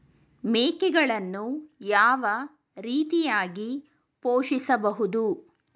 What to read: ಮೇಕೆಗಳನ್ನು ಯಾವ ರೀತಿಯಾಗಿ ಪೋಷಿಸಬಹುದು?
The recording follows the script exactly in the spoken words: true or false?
true